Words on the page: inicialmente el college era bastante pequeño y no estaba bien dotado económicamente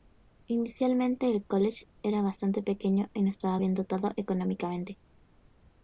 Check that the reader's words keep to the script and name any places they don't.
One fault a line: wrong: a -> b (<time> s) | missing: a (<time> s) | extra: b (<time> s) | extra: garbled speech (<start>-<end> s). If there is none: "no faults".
no faults